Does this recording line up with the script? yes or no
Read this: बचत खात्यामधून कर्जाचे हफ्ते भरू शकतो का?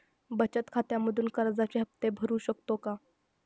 yes